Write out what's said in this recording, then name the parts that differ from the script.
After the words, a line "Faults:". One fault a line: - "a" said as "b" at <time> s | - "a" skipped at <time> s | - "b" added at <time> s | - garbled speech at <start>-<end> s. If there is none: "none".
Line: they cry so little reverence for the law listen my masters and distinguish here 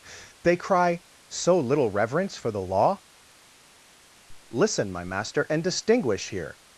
they cry so little reverence for the law listen my master and distinguish here
Faults:
- "masters" said as "master" at 5.0 s